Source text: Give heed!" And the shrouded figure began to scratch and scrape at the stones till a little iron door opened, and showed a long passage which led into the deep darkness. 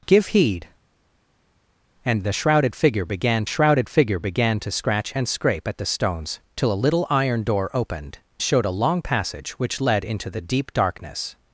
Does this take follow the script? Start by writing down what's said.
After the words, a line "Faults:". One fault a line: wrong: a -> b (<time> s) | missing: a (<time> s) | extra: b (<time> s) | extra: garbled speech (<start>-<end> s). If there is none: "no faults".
Give heed!" And the shrouded figure began shrouded figure began to scratch and scrape at the stones till a little iron door opened, showed a long passage which led into the deep darkness.
Faults:
extra: shrouded figure began (3.5 s)
missing: and (8.2 s)